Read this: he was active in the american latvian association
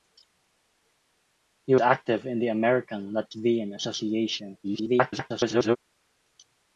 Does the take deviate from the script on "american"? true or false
false